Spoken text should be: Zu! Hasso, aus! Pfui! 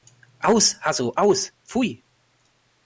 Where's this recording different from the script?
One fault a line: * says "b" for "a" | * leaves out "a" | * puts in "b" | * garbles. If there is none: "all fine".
* says "Aus" for "Zu"